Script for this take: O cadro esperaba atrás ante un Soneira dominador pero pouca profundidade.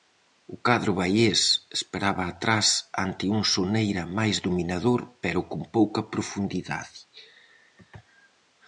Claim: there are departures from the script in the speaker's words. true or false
true